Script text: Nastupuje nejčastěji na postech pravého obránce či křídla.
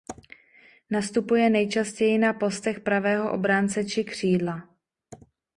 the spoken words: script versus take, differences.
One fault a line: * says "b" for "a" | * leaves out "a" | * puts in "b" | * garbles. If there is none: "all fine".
all fine